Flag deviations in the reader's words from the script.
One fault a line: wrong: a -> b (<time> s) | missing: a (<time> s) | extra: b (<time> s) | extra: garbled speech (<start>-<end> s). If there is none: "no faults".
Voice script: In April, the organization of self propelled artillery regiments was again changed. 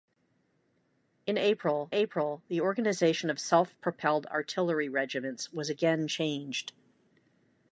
extra: April (1.9 s)